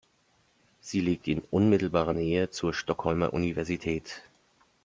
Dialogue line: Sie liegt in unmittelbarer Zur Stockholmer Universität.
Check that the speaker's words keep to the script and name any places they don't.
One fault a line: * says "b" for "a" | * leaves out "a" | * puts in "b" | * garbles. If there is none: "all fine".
* puts in "Nähe"